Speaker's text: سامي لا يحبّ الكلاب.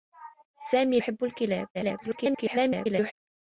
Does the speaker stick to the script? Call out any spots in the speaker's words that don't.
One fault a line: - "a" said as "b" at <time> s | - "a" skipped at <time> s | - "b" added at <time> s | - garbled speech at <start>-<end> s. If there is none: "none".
- "لا" skipped at 1.0 s
- garbled speech at 1.7-3.1 s